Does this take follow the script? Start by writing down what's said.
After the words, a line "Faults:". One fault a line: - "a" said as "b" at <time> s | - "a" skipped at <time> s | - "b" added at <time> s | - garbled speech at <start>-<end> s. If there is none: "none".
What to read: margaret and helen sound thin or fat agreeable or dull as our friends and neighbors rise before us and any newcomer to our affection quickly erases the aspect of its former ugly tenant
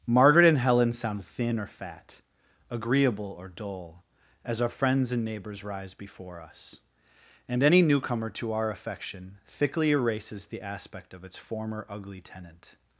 margaret and helen sound thin or fat agreeable or dull as our friends and neighbors rise before us and any newcomer to our affection thickly erases the aspect of its former ugly tenant
Faults:
- "quickly" said as "thickly" at 9.5 s